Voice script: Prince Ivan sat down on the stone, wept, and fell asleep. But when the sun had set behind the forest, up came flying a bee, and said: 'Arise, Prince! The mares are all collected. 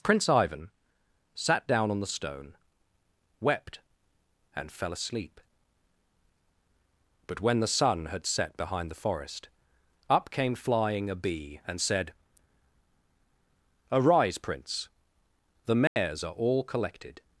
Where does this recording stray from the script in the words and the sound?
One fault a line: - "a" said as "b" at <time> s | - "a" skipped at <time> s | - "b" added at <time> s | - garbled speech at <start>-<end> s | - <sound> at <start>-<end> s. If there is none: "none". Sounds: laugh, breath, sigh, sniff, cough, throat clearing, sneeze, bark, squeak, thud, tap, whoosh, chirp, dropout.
- dropout at 15.9-16.0 s